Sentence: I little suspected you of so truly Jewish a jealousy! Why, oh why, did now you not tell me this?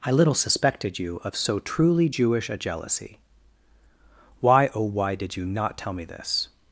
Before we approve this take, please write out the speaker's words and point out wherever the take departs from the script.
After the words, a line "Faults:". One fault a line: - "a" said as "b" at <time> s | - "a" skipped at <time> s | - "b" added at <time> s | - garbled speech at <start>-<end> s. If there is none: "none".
I little suspected you of so truly Jewish a jealousy! Why, oh why, did you not tell me this?
Faults:
- "now" skipped at 5.4 s